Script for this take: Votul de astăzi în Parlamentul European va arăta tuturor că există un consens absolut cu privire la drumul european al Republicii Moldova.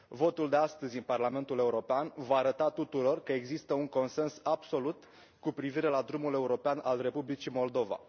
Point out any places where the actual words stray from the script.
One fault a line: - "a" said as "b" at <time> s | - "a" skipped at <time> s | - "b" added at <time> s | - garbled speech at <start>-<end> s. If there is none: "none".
none